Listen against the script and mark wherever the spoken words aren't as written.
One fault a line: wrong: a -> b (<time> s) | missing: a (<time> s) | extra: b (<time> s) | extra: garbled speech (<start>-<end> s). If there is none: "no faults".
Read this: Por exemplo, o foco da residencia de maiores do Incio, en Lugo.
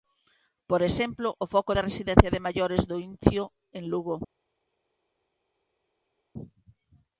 no faults